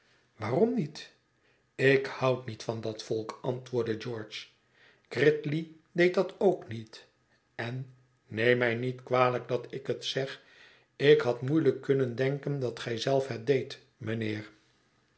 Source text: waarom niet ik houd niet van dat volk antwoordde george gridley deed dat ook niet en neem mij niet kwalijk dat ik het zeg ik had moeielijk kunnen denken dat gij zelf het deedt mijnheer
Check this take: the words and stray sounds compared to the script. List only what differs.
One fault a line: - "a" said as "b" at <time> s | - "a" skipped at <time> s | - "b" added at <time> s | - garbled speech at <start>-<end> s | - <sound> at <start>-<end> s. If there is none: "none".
none